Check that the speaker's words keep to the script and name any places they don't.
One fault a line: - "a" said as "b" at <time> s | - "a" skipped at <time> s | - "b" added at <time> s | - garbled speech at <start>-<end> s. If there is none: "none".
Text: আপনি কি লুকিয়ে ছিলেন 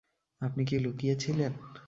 none